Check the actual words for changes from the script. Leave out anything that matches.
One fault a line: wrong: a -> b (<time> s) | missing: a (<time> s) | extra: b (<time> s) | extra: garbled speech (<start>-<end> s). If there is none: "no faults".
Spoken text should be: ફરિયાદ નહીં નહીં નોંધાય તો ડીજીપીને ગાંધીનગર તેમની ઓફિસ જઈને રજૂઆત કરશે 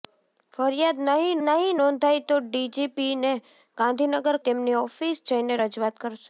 no faults